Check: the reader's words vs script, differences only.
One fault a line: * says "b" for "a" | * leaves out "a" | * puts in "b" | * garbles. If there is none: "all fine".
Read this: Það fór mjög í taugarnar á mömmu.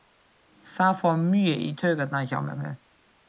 all fine